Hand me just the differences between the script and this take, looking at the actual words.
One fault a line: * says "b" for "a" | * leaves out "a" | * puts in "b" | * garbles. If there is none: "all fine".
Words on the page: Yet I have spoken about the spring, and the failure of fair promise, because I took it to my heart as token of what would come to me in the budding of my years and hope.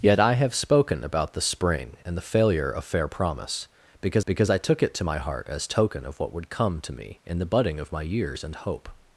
* puts in "because"